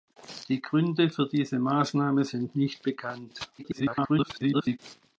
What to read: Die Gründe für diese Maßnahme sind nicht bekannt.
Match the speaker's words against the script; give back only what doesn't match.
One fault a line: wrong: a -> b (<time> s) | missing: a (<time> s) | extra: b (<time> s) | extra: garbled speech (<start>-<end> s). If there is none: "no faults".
extra: garbled speech (3.6-4.8 s)